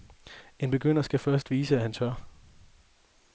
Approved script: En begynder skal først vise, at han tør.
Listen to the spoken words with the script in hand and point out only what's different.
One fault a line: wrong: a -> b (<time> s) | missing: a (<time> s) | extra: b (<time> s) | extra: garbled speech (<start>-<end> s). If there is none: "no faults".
no faults